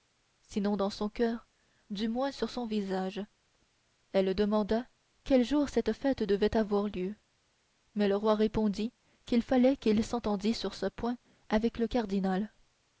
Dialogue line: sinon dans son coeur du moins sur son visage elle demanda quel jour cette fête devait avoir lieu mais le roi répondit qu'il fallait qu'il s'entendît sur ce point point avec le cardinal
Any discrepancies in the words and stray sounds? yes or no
yes